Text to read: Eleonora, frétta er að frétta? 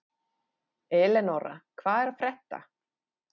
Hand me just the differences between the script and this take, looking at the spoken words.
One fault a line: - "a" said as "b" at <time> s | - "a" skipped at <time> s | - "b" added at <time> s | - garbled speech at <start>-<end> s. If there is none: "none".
- "frétta" said as "hvað" at 1.8 s